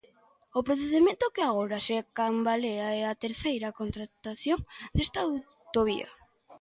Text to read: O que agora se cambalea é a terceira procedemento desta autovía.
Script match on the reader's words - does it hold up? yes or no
no